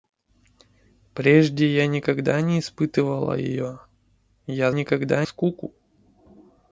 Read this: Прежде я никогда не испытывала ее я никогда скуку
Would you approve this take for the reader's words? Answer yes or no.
yes